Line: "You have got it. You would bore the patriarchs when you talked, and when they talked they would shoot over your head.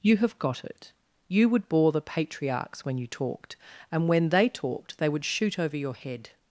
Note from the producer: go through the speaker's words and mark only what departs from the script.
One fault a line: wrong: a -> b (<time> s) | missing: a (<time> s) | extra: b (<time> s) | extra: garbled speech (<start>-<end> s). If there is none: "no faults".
no faults